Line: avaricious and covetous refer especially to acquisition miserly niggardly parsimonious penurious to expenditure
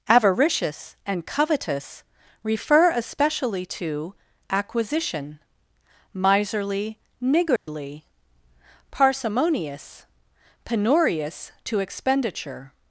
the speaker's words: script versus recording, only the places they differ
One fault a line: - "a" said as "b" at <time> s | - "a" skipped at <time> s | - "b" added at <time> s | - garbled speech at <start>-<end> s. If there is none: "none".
none